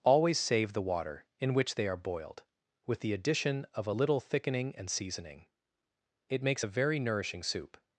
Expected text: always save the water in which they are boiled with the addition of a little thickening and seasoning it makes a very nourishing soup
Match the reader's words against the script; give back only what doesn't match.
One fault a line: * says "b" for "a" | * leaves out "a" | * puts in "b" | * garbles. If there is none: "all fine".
all fine